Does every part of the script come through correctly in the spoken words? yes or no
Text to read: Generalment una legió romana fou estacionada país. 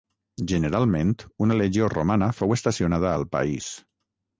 no